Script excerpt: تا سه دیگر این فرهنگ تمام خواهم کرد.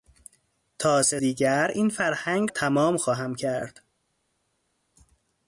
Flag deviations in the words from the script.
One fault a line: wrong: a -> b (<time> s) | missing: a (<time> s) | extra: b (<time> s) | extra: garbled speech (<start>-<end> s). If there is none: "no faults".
no faults